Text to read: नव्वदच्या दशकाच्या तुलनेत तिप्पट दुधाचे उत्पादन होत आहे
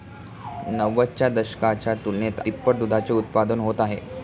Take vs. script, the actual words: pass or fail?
pass